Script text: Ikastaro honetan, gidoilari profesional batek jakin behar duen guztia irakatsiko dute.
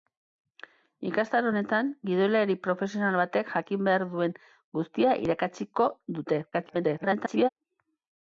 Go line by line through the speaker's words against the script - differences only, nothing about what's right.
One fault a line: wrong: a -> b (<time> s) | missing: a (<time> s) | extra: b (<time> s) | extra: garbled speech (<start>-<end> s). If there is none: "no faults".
extra: garbled speech (6.5-7.5 s)